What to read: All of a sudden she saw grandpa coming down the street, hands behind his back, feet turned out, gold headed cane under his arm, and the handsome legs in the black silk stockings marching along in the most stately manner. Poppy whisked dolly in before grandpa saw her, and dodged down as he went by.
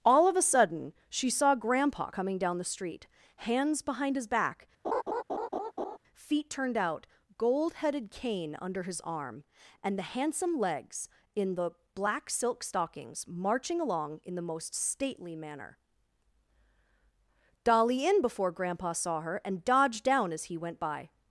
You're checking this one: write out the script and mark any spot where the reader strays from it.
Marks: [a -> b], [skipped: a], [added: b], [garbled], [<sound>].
All of a sudden she saw grandpa coming down the street, hands behind his back, [laugh] feet turned out, gold headed cane under his arm, and the handsome legs in the black silk stockings marching along in the most stately manner. [skipped: Poppy whisked] dolly in before grandpa saw her, and dodged down as he went by.